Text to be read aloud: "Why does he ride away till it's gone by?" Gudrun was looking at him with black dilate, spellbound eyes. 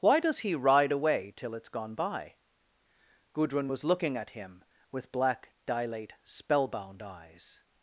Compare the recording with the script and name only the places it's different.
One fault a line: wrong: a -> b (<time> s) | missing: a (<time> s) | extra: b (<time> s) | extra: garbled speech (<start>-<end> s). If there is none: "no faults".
no faults